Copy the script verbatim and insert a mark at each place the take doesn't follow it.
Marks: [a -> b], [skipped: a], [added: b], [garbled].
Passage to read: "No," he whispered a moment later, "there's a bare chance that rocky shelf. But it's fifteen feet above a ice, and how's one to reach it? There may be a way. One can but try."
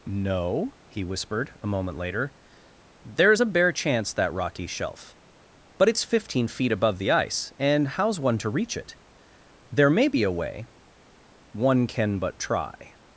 "No," he whispered a moment later, "there's a bare chance that rocky shelf. But it's fifteen feet above [a -> the] ice, and how's one to reach it? There may be a way. One can but try."